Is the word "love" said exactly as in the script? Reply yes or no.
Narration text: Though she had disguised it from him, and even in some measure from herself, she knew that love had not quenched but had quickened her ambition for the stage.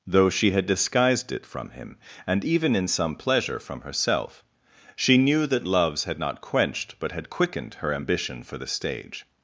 no